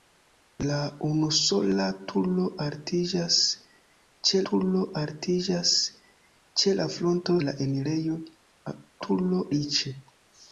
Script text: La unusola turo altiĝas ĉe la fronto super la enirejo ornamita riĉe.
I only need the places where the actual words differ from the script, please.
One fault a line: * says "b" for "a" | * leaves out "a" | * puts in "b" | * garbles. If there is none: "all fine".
* puts in "turo altiĝas ĉe"
* leaves out "super"
* says "turo" for "ornamita"